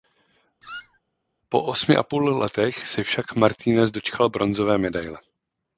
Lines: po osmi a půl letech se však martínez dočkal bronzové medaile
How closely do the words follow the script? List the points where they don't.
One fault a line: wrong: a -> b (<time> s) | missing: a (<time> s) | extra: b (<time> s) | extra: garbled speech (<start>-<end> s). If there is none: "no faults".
no faults